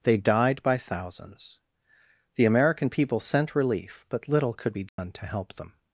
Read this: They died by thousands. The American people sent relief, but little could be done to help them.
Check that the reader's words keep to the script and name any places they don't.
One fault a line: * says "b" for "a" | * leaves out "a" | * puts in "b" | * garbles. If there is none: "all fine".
all fine